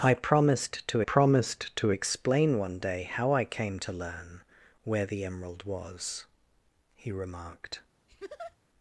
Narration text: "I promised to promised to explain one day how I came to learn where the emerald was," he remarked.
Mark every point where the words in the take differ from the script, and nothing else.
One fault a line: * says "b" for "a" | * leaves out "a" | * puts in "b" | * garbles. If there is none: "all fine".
all fine